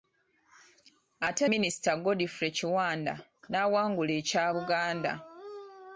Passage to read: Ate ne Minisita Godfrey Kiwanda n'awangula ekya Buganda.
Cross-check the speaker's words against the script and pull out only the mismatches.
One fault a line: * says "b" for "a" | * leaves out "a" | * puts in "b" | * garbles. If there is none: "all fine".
* leaves out "ne"